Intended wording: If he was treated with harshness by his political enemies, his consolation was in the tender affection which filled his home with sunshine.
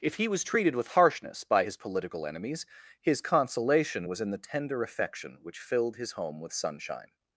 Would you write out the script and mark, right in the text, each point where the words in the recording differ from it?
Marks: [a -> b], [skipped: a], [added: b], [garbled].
If he was treated with harshness by his political enemies, his consolation was in the tender affection which filled his home with sunshine.